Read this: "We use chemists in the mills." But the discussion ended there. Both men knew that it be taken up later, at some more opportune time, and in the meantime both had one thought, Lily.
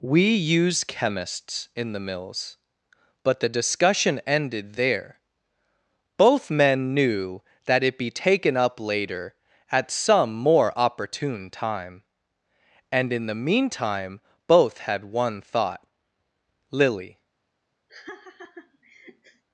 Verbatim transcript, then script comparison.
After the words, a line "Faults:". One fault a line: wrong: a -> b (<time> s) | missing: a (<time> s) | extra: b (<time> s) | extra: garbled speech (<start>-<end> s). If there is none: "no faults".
"We use chemists in the mills." But the discussion ended there. Both men knew that it be taken up later, at some more opportune time, and in the meantime both had one thought, Lily.
Faults:
no faults